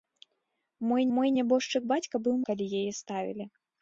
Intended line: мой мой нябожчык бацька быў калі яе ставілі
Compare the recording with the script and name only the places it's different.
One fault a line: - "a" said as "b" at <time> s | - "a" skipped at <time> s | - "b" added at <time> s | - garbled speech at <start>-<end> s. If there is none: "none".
none